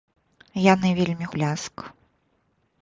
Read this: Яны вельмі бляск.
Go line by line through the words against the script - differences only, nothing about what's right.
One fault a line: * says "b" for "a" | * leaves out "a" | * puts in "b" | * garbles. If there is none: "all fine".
all fine